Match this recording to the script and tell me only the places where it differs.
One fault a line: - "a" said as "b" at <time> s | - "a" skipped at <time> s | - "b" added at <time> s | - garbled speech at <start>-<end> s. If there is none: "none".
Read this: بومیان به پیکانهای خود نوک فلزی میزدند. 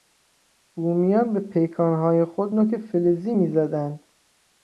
none